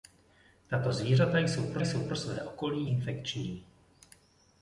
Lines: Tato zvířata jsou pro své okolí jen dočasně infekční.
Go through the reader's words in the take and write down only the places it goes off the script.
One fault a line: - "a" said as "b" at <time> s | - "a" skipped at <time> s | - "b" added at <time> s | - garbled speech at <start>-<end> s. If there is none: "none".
- "jsou pro" added at 1.8 s
- "jen dočasně" skipped at 2.9 s